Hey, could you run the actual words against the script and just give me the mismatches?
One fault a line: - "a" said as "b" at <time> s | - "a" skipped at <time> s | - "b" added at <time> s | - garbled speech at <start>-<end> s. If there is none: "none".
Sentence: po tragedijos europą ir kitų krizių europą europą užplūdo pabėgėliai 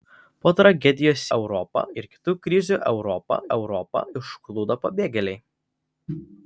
none